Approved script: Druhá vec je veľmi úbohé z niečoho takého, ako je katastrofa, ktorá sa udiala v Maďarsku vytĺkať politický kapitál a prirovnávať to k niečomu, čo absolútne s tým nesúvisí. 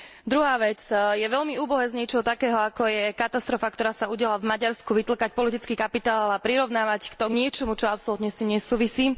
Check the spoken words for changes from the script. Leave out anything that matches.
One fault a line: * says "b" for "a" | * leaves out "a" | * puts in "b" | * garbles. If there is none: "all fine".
all fine